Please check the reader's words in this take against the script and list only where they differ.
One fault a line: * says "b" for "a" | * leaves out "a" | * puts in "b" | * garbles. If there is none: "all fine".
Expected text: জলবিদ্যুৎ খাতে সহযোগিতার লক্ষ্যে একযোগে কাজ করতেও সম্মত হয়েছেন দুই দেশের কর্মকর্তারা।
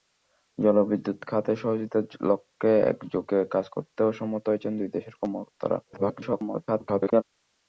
* garbles